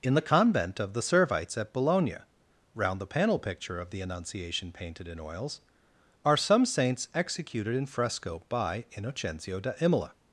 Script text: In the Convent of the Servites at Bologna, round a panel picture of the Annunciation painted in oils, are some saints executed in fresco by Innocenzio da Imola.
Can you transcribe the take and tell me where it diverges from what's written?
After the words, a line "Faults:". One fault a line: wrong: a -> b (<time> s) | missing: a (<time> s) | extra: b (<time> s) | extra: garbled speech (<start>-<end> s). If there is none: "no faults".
In the Convent of the Servites at Bologna, round the panel picture of the Annunciation painted in oils, are some saints executed in fresco by Innocenzio da Imola.
Faults:
wrong: a -> the (3.0 s)